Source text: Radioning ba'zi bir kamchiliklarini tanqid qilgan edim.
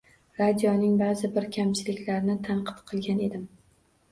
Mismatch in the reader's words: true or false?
false